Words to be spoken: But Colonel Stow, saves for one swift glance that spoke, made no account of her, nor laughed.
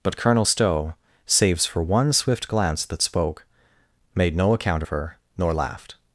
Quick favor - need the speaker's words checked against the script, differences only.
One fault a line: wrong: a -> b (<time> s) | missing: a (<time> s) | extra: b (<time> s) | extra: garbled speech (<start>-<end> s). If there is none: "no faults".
no faults